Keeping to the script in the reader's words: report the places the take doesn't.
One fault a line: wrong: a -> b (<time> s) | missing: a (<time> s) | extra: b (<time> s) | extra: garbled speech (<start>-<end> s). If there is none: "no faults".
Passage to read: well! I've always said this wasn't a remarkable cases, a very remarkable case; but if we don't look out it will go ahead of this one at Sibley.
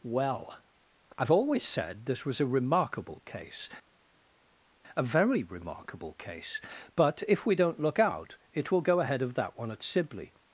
wrong: wasn't -> was (2.2 s)
wrong: cases -> case (3.2 s)
wrong: this -> that (9.3 s)